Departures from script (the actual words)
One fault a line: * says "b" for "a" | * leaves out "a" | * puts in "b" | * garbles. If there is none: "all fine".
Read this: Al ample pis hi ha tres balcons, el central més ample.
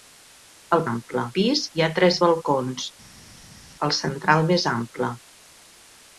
all fine